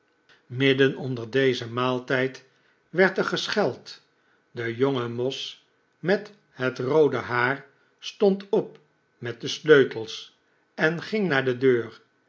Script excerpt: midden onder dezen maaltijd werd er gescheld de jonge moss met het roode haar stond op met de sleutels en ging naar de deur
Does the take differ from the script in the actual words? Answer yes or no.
no